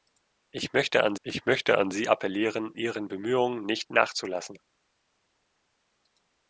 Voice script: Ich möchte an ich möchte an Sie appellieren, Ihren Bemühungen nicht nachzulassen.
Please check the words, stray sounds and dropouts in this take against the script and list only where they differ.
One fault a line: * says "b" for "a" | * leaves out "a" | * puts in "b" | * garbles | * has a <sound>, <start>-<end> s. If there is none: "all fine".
all fine